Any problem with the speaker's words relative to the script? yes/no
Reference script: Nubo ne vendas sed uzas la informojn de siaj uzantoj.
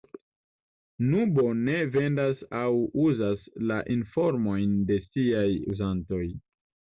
yes